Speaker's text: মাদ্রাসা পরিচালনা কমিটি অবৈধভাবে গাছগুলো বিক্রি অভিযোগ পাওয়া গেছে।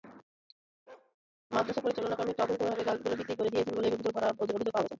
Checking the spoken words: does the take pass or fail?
fail